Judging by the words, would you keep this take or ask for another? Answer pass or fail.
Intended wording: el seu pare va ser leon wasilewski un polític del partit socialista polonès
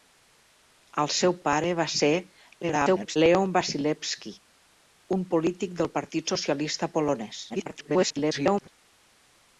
fail